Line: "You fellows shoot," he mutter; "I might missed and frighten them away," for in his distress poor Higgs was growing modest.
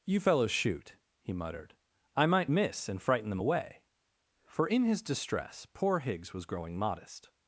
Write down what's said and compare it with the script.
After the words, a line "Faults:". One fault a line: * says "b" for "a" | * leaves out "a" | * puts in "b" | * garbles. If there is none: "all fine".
"You fellows shoot," he muttered; "I might miss and frighten them away," for in his distress poor Higgs was growing modest.
Faults:
* says "muttered" for "mutter"
* says "miss" for "missed"